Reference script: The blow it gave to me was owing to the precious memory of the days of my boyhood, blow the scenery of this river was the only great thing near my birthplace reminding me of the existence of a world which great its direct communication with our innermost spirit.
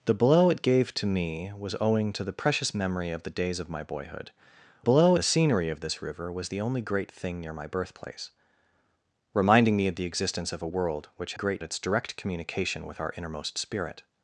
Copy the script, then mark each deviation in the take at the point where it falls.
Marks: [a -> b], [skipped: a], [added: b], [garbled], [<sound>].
The blow it gave to me was owing to the precious memory of the days of my boyhood, blow the scenery of this river was the only great thing near my birthplace reminding me of the existence of a world which great its direct communication with our innermost spirit.